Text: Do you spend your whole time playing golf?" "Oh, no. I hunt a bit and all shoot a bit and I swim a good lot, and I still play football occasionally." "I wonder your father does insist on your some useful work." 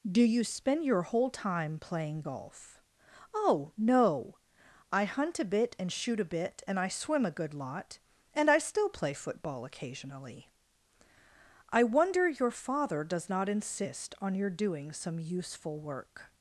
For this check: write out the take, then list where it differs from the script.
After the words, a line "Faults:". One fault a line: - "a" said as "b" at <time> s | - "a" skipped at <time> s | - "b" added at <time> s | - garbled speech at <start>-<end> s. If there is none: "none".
Do you spend your whole time playing golf?" "Oh, no. I hunt a bit and shoot a bit and I swim a good lot, and I still play football occasionally." "I wonder your father does not insist on your doing some useful work."
Faults:
- "all" skipped at 5.9 s
- "not" added at 13.3 s
- "doing" added at 14.5 s